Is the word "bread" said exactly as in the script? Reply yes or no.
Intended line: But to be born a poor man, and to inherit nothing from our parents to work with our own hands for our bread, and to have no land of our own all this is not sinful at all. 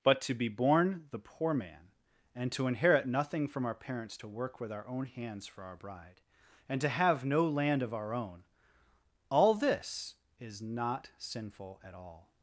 no